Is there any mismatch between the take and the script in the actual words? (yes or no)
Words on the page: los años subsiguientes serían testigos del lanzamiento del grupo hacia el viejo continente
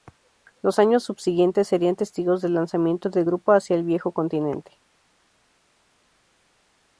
no